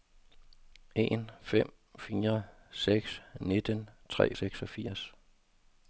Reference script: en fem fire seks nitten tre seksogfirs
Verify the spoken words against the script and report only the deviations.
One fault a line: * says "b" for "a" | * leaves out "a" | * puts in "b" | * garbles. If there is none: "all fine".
all fine